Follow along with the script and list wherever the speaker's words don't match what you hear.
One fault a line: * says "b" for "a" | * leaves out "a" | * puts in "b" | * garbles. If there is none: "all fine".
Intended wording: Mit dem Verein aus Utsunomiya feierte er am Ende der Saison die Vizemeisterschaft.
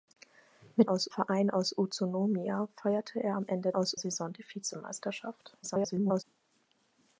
* says "aus" for "dem"
* says "aus" for "der"
* garbles